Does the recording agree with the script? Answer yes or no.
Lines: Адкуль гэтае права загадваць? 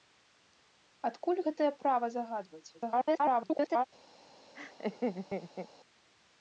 no